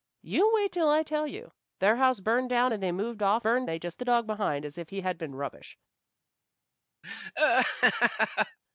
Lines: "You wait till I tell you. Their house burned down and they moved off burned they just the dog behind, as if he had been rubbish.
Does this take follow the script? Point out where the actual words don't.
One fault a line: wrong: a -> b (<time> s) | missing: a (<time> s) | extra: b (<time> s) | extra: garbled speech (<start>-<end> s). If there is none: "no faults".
no faults